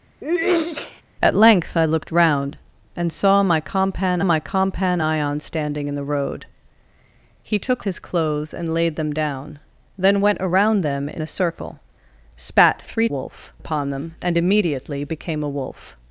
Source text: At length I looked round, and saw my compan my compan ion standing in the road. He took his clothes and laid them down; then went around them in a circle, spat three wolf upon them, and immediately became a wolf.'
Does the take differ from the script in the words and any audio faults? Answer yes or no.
yes